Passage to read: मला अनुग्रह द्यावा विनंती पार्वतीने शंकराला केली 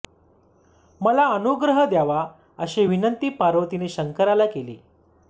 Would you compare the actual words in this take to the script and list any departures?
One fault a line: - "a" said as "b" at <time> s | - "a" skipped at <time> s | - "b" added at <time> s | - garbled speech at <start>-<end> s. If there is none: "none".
- "अशी" added at 2.6 s